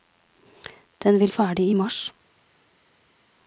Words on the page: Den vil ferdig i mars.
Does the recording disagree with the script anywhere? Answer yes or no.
no